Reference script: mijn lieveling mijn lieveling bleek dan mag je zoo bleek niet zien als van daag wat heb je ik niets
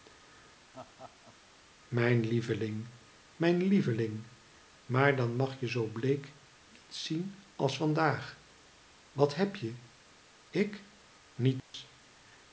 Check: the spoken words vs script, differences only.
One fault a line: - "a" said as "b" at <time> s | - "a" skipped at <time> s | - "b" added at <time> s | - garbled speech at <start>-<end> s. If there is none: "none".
- "bleek" said as "maar" at 4.8 s